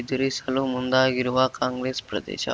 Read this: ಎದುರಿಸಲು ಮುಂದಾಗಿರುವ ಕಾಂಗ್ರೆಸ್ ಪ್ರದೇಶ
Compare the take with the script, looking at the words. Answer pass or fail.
pass